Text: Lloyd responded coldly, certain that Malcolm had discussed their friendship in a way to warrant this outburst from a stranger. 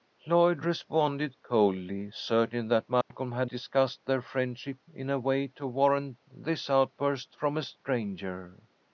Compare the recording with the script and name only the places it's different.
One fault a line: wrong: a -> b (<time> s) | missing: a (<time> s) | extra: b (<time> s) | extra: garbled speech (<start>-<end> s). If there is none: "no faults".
no faults